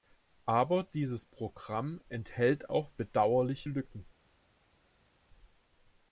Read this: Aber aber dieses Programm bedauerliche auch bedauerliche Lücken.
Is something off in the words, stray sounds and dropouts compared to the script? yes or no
yes